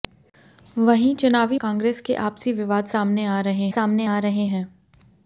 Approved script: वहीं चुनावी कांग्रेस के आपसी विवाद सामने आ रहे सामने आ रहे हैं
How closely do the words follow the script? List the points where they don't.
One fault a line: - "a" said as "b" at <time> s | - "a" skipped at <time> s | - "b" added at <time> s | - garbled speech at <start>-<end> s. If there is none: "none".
none